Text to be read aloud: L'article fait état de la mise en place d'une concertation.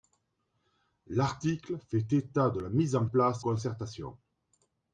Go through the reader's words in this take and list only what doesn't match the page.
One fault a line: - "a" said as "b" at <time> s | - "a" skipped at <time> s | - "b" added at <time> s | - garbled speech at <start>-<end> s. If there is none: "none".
- "d'une" skipped at 3.4 s